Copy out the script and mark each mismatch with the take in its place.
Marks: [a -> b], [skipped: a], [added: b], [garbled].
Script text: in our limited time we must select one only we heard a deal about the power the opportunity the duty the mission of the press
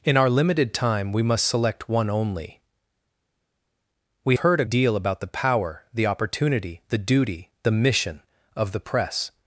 in our limited time we must select one only we heard a deal about the power the opportunity the duty the mission of the press